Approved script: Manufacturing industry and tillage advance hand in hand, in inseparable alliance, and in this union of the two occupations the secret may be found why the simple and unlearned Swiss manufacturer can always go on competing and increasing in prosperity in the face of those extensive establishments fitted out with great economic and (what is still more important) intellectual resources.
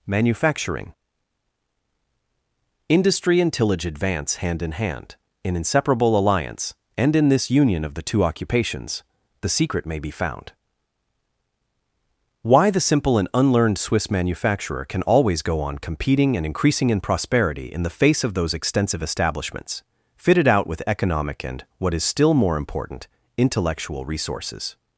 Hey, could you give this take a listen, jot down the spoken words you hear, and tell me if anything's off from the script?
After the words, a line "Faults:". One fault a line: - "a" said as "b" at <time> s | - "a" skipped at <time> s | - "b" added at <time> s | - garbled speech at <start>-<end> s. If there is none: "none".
Manufacturing industry and tillage advance hand in hand, in inseparable alliance, and in this union of the two occupations the secret may be found why the simple and unlearned Swiss manufacturer can always go on competing and increasing in prosperity in the face of those extensive establishments fitted out with economic and (what is still more important) intellectual resources.
Faults:
- "great" skipped at 20.8 s